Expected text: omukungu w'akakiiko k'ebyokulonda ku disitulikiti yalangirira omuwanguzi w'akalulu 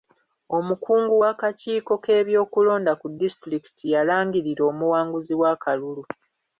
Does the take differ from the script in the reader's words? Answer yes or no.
no